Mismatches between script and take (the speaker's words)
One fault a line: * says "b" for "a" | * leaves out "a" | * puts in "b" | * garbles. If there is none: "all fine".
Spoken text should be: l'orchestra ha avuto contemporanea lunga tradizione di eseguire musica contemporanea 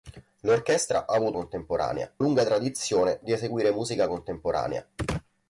all fine